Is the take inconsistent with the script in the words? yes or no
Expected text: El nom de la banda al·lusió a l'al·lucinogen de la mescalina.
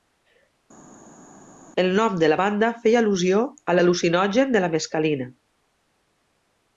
yes